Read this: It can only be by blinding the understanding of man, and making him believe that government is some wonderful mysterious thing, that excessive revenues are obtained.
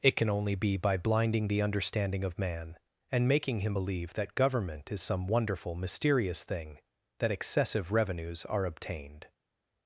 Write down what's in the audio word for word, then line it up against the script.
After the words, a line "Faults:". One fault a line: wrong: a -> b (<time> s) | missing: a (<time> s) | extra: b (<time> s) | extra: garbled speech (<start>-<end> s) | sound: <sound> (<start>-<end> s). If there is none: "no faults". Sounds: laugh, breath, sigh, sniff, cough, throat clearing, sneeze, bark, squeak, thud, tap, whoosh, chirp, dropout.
It can only be by blinding the understanding of man, and making him believe that government is some wonderful mysterious thing, that excessive revenues are obtained.
Faults:
no faults